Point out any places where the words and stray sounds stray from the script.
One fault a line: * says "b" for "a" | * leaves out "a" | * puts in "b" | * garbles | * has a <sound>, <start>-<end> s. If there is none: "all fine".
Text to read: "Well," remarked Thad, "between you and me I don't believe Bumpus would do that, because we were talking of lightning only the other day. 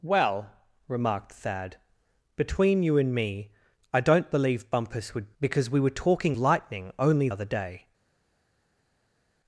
* leaves out "do that"
* leaves out "of"
* leaves out "the"